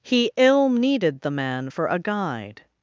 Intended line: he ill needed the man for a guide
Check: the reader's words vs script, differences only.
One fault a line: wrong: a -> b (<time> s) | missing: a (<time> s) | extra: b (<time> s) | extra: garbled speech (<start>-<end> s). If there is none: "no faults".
no faults